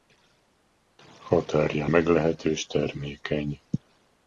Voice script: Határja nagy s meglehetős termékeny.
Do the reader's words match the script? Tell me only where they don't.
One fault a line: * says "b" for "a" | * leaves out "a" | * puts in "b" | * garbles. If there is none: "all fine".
* leaves out "nagy s"